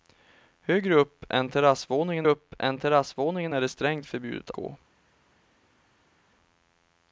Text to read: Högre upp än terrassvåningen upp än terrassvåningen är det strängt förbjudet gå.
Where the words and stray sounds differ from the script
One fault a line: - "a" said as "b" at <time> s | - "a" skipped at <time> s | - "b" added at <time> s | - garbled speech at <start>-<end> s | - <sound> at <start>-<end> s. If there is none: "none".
none